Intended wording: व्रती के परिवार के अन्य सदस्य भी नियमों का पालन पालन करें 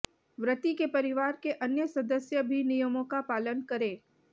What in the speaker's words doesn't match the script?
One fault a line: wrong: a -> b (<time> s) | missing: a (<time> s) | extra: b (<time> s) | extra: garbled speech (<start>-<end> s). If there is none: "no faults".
missing: पालन (3.6 s)